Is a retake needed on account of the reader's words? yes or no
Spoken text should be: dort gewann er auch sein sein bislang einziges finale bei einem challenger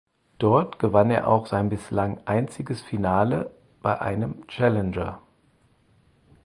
yes